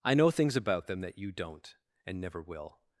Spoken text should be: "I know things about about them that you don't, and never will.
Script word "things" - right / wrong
right